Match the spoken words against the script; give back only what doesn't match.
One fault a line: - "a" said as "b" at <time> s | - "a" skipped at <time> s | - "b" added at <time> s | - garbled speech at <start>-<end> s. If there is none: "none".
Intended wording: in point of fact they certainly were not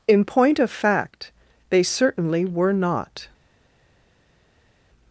none